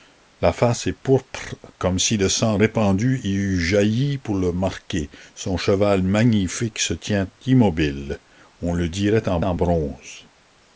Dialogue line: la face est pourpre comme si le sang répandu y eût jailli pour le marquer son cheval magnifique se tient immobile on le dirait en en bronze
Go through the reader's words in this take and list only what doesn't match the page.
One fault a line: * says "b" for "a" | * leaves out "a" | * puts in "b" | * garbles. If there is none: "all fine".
all fine